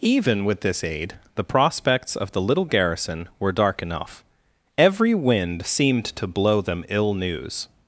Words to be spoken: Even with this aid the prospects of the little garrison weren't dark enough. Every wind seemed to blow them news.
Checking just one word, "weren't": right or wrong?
wrong